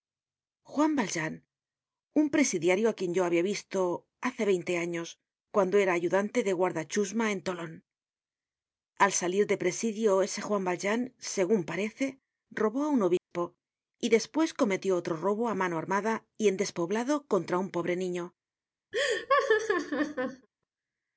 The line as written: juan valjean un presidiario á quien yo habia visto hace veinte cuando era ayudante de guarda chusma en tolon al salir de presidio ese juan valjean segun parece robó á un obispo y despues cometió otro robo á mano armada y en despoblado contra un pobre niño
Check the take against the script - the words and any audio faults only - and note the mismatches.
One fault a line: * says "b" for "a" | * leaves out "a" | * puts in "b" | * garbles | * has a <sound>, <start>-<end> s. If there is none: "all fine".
* puts in "años"
* has a dropout, 13.2-13.3 s
* has a laugh, 18.9-20.5 s